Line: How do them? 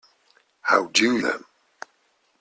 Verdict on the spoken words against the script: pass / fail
pass